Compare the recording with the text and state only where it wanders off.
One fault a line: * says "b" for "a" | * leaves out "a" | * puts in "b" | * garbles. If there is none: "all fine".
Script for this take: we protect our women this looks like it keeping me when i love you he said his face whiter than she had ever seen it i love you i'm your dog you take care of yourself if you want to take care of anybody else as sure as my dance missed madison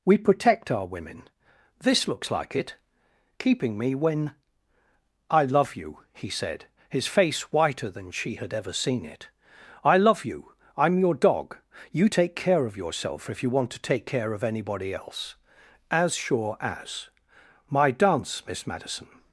* says "miss" for "missed"